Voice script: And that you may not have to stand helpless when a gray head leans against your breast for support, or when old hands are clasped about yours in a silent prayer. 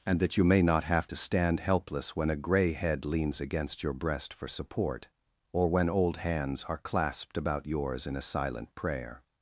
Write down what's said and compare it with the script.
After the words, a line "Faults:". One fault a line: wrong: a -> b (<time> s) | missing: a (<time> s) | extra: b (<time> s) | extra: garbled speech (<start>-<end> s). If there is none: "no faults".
And that you may not have to stand helpless when a gray head leans against your breast for support, or when old hands are clasped about yours in a silent prayer.
Faults:
no faults